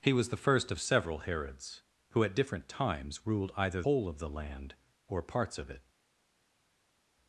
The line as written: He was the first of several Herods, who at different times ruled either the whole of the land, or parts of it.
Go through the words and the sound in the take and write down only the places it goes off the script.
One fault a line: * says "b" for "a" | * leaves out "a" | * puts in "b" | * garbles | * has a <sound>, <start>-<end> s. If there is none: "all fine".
* leaves out "the"